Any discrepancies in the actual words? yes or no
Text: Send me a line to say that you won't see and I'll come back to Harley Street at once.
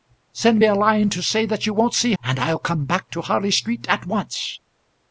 no